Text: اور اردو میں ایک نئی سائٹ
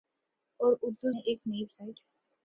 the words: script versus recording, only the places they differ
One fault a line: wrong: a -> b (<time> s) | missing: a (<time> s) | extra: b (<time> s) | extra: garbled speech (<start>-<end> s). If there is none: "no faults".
no faults